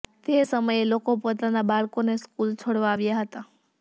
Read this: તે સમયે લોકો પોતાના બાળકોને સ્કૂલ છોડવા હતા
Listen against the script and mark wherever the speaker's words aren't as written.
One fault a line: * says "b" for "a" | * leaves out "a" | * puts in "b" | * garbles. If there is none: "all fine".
* puts in "આવ્યા"